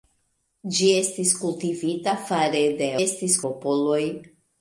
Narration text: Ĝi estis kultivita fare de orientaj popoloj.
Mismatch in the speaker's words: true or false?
true